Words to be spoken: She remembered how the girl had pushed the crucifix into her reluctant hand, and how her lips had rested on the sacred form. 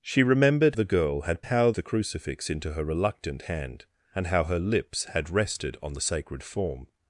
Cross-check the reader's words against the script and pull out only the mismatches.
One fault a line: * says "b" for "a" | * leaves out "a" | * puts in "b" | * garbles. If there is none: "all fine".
* leaves out "how"
* says "how" for "pushed"